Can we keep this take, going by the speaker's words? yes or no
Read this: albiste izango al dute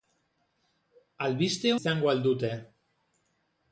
yes